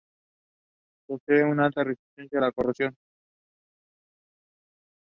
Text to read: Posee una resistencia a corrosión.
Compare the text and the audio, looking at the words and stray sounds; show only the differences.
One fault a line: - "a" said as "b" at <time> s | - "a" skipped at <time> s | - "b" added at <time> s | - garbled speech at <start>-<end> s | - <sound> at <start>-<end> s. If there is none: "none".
- "alta" added at 1.6 s
- "la" added at 2.4 s